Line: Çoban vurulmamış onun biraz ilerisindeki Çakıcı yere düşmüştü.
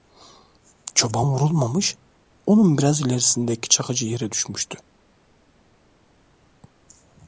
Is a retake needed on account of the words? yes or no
no